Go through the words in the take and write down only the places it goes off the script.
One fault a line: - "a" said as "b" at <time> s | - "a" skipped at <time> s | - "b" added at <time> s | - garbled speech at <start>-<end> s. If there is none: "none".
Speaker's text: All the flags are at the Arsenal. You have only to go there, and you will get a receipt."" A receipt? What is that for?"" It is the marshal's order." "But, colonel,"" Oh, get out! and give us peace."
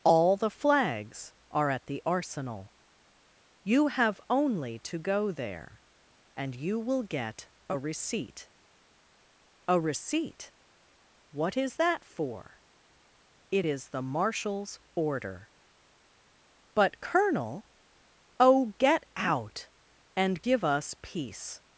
none